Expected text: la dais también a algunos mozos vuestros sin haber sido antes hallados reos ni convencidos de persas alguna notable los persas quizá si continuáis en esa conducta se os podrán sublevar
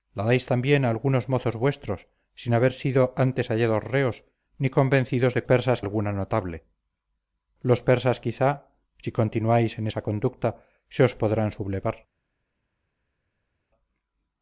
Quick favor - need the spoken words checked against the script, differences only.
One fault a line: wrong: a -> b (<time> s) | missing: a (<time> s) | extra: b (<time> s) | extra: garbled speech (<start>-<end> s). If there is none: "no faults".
no faults